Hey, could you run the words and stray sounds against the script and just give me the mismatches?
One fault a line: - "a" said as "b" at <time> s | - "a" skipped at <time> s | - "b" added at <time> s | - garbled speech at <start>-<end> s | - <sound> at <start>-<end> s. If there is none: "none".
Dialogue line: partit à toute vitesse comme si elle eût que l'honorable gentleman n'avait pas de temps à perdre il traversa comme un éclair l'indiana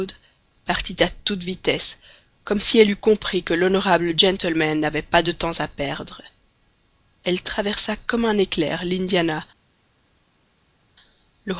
- "compris" added at 3.0 s
- "il" said as "elle" at 7.2 s